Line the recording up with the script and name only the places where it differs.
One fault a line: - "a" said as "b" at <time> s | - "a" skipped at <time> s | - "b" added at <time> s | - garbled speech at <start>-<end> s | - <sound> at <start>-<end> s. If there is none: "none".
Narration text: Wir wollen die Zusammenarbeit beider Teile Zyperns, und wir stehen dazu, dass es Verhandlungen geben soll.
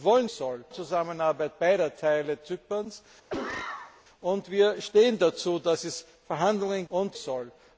- "die" said as "soll" at 0.3 s
- cough at 3.3-4.0 s
- "geben" said as "und" at 6.9 s